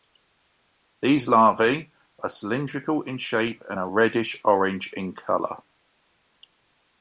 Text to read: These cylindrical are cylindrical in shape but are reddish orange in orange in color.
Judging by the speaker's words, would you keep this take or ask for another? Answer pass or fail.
fail